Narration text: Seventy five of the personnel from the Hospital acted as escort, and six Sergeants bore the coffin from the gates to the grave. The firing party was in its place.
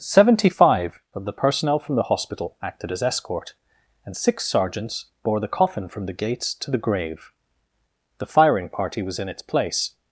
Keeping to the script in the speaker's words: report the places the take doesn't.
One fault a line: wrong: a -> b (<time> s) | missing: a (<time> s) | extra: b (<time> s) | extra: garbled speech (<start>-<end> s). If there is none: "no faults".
no faults